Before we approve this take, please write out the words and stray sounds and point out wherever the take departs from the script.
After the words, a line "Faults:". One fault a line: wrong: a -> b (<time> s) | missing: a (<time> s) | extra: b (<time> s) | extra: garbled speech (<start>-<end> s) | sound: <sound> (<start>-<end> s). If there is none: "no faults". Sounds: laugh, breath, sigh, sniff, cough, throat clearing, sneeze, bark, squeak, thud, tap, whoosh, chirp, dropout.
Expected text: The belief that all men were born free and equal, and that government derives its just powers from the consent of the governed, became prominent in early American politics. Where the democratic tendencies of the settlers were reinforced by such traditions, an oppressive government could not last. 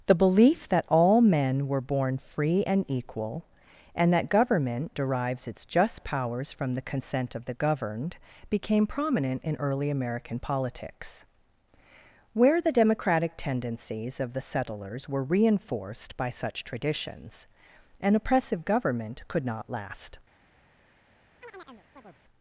The belief that all men were born free and equal, and that government derives its just powers from the consent of the governed, became prominent in early American politics. Where the democratic tendencies of the settlers were reinforced by such traditions, an oppressive government could not last.
Faults:
sound: chirp (21.4-22.2 s)